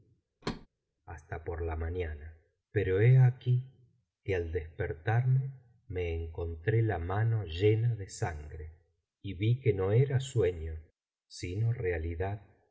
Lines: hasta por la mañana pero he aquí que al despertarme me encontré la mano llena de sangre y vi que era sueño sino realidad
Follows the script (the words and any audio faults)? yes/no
no